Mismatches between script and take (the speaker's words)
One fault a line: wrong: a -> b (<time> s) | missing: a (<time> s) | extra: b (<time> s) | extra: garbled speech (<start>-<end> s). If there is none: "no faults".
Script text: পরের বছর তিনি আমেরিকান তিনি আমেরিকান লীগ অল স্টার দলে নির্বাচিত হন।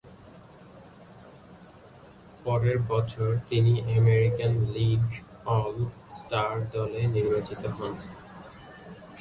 missing: তিনি আমেরিকান (4.5 s)